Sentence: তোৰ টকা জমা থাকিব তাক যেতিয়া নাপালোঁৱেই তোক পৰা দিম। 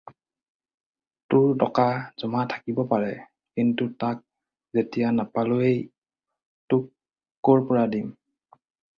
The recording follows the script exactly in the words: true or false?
false